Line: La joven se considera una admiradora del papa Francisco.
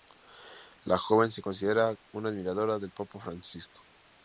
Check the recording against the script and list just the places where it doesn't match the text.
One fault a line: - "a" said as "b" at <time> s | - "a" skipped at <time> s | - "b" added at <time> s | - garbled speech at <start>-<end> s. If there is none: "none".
none